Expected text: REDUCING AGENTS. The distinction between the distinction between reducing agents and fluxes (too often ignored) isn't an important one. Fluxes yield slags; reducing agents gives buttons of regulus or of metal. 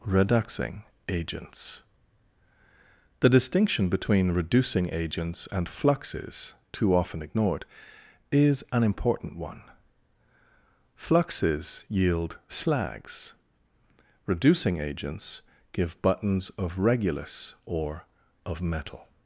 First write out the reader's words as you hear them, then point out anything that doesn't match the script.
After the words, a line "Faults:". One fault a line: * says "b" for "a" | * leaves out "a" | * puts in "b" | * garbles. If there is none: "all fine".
REDUCING AGENTS. The distinction between reducing agents and fluxes (too often ignored) is an important one. Fluxes yield slags; reducing agents give buttons of regulus or of metal.
Faults:
* leaves out "the distinction between"
* says "is" for "isn't"
* says "give" for "gives"